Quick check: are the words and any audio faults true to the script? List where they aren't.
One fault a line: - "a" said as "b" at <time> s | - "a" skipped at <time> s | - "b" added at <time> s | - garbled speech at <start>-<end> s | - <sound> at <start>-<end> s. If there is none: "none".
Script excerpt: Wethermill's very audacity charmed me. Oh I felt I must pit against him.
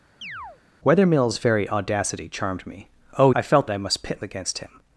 - chirp at 0.2-0.6 s